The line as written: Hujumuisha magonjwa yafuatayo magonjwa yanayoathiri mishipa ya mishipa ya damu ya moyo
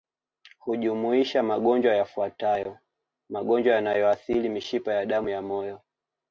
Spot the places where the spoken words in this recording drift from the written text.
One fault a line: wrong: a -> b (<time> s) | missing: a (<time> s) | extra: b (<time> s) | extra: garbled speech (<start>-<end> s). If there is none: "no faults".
missing: mishipa ya (5.1 s)